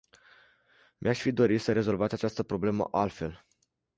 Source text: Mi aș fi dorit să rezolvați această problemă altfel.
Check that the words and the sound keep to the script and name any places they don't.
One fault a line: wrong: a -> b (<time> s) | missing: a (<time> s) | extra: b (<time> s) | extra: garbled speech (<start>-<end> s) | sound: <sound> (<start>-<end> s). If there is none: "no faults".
no faults